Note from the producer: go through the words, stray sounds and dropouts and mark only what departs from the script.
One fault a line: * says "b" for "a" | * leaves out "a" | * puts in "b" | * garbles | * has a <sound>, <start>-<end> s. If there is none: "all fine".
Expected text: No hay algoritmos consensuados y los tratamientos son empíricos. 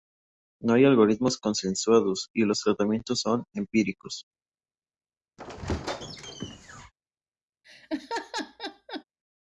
* has a squeak, 5.4-6.9 s
* has a laugh, 7.6-9.0 s